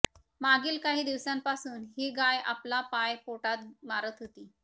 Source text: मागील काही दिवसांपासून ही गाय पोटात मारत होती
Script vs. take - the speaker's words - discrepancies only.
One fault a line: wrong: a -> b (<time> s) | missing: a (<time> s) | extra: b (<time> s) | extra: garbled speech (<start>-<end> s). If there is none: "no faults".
extra: आपला पाय (2.5 s)